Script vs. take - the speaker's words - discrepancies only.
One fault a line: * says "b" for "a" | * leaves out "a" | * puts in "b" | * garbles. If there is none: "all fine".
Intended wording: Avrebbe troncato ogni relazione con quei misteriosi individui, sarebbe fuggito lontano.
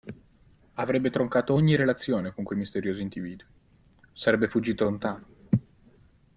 all fine